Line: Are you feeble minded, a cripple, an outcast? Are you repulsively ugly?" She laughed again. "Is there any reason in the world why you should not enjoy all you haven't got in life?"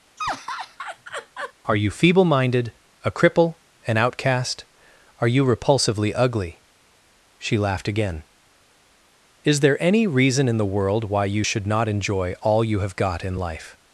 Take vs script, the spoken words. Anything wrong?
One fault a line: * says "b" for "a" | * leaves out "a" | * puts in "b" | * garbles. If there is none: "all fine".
* says "have" for "haven't"